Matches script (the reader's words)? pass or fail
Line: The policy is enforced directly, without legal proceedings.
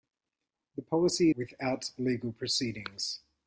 fail